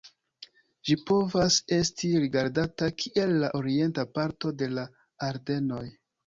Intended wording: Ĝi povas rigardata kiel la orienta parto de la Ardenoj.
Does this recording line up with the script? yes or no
no